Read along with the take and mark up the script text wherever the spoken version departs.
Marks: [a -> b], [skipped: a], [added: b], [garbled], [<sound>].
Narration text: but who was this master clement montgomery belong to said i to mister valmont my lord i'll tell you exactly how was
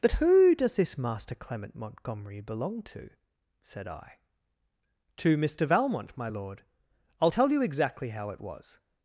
but who [was -> does] this master clement montgomery belong to said i to mister valmont my lord i'll tell you exactly how [added: it] was